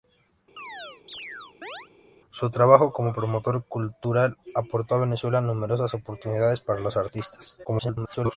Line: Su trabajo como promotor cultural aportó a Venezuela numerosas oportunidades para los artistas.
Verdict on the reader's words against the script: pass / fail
fail